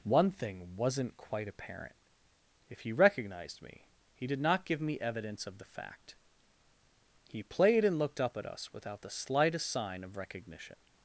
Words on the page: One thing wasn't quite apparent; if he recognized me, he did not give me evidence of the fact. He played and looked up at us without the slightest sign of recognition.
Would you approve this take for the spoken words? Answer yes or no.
yes